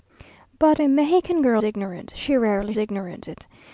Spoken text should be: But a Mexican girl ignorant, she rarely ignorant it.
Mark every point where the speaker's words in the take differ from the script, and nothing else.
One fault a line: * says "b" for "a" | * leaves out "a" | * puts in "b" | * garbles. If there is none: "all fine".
all fine